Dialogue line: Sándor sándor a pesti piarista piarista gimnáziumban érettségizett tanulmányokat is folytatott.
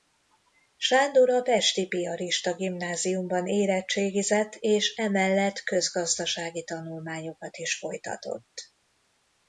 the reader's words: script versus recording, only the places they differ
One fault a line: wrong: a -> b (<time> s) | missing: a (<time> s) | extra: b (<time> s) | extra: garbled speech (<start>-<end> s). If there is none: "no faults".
missing: sándor (1.3 s)
missing: piarista (2.5 s)
extra: és emellett közgazdasági (4.5 s)